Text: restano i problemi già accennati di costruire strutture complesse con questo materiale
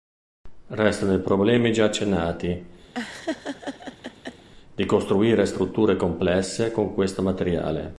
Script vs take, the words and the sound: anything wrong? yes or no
yes